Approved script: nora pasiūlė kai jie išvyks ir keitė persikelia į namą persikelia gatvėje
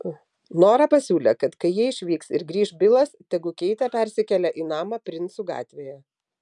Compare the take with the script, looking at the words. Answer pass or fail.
fail